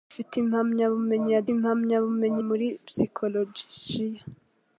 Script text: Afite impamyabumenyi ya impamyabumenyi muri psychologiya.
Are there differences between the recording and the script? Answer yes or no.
no